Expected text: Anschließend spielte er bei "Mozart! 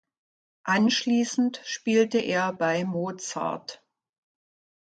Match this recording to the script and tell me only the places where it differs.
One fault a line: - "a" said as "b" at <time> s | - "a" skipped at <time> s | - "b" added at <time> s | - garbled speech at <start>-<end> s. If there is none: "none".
none